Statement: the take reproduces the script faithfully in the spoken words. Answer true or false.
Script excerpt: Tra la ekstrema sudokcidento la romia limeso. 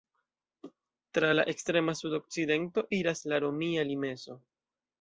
false